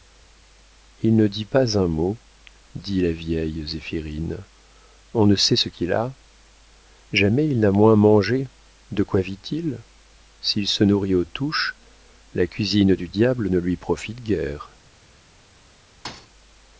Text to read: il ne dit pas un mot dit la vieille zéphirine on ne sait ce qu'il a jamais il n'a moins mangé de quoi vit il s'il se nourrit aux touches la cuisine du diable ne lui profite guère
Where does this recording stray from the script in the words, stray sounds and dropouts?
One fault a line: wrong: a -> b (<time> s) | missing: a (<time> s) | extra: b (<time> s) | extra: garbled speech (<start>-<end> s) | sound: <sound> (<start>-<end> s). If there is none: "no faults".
sound: thud (16.0-16.3 s)